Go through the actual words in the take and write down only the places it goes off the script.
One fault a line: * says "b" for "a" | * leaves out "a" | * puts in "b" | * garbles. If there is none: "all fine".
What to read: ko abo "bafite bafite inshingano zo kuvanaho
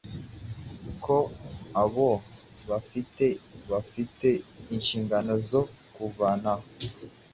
all fine